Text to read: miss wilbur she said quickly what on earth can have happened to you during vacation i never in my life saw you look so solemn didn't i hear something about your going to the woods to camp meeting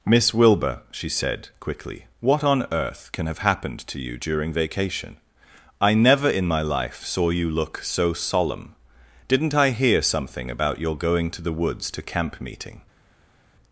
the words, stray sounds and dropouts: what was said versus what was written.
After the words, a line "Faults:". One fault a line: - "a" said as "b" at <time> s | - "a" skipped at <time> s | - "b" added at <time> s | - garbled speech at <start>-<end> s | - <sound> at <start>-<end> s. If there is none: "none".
miss wilbur she said quickly what on earth can have happened to you during vacation i never in my life saw you look so solemn didn't i hear something about your going to the woods to camp meeting
Faults:
none